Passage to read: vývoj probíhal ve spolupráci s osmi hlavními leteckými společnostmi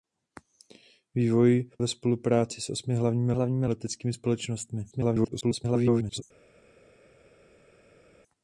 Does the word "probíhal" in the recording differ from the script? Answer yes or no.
yes